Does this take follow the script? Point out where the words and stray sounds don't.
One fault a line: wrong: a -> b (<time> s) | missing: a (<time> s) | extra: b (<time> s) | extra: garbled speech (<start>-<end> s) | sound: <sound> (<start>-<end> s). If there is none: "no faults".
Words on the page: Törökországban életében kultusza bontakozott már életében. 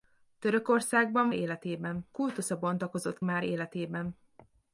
no faults